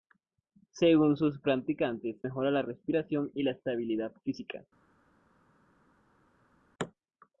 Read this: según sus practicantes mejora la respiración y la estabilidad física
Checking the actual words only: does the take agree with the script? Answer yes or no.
yes